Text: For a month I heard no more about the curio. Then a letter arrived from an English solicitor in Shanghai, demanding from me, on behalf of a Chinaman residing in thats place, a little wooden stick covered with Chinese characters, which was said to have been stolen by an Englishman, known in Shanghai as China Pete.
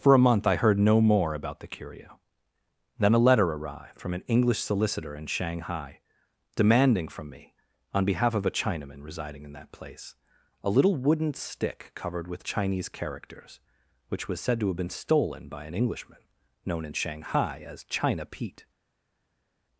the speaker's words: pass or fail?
fail